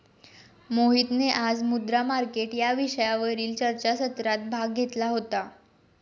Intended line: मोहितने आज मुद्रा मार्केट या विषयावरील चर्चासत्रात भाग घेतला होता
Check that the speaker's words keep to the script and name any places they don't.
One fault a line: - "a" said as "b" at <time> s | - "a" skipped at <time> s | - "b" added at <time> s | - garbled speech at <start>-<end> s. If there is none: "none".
none